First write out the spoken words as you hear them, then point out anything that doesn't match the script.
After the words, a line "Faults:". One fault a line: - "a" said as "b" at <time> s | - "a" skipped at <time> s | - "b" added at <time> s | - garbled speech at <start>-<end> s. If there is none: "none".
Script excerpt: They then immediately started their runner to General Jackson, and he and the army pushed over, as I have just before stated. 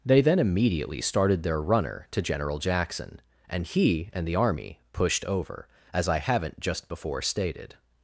They then immediately started their runner to General Jackson, and he and the army pushed over, as I haven't just before stated.
Faults:
- "have" said as "haven't" at 6.2 s